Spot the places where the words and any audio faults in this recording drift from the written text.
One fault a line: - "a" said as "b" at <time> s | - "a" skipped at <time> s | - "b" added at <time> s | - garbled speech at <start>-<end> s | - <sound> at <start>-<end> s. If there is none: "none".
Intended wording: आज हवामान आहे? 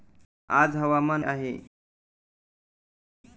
none